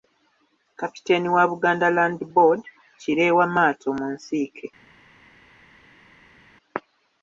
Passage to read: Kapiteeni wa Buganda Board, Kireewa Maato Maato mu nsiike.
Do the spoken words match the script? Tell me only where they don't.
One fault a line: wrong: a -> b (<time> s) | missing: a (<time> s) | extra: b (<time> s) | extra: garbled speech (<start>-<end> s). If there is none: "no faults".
extra: Land (2.0 s)
missing: Maato (3.9 s)